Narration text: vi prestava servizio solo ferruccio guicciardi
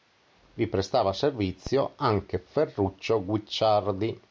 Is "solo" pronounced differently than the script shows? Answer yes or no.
yes